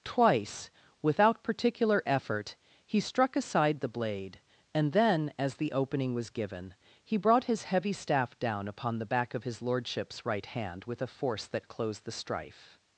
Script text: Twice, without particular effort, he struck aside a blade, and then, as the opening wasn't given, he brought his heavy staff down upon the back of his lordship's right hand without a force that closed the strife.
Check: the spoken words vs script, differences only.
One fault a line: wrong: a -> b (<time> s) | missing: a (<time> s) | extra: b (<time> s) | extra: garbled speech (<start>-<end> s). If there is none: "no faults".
wrong: a -> the (3.8 s)
wrong: wasn't -> was (6.2 s)
wrong: without -> with (10.8 s)